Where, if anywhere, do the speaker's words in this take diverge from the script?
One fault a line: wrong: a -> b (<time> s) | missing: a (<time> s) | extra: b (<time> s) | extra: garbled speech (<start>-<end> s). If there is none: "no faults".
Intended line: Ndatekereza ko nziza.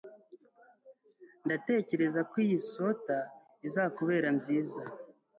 extra: iyi swater izakubera (2.5 s)